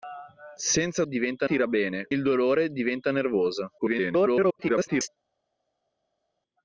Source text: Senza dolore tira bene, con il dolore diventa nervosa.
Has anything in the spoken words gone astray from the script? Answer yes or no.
yes